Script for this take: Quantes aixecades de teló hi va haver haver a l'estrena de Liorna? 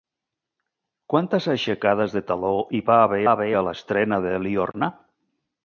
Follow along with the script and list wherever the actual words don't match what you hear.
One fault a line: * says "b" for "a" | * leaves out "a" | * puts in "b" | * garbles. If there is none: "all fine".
all fine